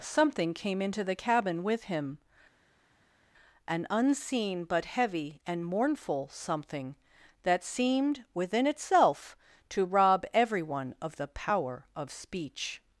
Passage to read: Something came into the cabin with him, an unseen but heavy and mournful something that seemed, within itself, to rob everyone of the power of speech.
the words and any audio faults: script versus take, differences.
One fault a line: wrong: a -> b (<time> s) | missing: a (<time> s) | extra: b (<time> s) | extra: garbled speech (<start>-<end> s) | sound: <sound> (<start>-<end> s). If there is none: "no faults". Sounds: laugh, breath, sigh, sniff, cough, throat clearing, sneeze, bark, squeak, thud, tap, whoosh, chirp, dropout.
no faults